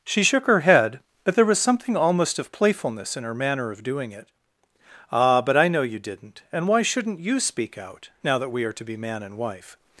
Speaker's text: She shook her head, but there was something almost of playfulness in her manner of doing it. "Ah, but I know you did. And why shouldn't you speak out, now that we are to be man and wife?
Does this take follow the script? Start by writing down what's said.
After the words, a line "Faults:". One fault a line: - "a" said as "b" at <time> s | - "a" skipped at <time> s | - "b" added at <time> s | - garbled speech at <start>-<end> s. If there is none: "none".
She shook her head, but there was something almost of playfulness in her manner of doing it. "Ah, but I know you didn't. And why shouldn't you speak out, now that we are to be man and wife?
Faults:
- "did" said as "didn't" at 6.0 s